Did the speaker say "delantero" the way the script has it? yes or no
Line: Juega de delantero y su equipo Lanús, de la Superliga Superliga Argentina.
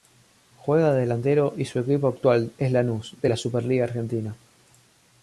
yes